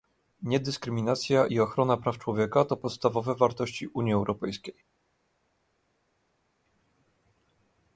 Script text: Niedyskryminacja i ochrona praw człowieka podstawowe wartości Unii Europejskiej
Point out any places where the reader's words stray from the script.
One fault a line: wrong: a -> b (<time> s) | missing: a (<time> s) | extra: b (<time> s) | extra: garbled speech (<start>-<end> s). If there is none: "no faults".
extra: to (2.6 s)